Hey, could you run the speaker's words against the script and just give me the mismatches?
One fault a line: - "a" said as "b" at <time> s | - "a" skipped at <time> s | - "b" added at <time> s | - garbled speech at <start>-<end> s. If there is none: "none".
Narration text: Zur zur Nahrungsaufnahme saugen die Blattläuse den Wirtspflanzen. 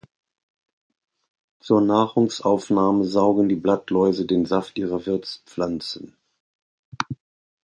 - "zur" skipped at 1.8 s
- "Saft ihrer" added at 4.5 s